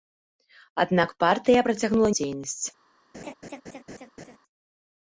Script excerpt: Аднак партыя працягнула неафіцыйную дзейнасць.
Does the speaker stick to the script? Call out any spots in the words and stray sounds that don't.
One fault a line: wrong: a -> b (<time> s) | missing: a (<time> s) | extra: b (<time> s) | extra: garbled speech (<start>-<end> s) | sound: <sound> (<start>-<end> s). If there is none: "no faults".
missing: неафіцыйную (2.1 s)
sound: laugh (3.1-4.4 s)